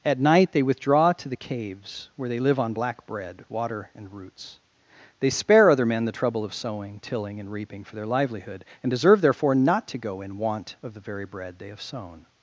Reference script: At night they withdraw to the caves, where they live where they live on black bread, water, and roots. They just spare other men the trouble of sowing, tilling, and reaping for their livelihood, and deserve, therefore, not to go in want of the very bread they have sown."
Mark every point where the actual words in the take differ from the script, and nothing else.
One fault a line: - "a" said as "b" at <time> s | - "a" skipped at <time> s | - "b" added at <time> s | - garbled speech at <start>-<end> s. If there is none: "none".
- "where they live" skipped at 2.6 s
- "just" skipped at 5.3 s